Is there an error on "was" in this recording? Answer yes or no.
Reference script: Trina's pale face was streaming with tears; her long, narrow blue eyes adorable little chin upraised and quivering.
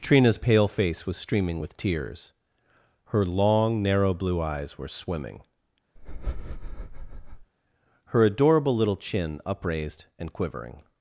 no